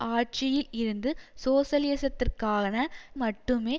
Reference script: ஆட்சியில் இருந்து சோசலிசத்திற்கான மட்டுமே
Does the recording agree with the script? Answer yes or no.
yes